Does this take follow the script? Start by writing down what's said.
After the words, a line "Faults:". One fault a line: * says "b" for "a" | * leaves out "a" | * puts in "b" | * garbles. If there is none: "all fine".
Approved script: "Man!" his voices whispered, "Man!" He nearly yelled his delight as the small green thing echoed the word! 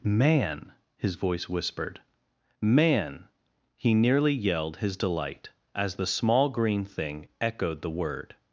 "Man!" his voice whispered, "Man!" He nearly yelled his delight as the small green thing echoed the word!
Faults:
* says "voice" for "voices"